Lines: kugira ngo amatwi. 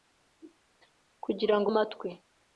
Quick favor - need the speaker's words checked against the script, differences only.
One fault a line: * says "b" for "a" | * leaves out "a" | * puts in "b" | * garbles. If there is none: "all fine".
all fine